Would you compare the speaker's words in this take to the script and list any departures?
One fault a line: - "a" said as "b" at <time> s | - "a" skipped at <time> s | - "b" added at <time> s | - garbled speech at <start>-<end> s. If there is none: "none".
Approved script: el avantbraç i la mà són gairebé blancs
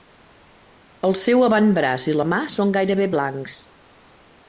- "seu" added at 1.2 s